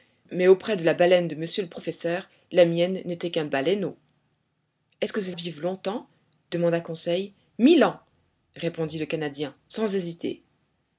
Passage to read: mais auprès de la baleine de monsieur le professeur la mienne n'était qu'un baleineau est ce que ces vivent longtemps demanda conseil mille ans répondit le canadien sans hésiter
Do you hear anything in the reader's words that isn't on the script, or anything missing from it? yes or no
no